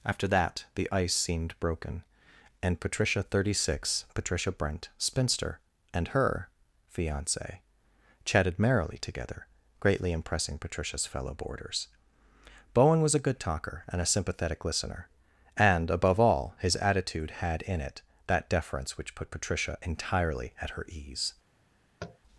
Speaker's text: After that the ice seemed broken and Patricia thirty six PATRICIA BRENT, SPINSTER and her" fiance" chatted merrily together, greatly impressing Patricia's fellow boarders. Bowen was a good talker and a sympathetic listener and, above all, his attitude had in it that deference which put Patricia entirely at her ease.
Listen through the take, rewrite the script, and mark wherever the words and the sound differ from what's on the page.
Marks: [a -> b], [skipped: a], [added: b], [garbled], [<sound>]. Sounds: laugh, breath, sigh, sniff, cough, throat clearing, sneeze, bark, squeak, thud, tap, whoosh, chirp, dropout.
After that the ice seemed broken and Patricia thirty six PATRICIA BRENT, SPINSTER and her" fiance" chatted merrily together, greatly impressing Patricia's fellow boarders. Bowen was a good talker and a sympathetic listener and, above all, his attitude had in it that deference which put Patricia entirely at her ease. [tap]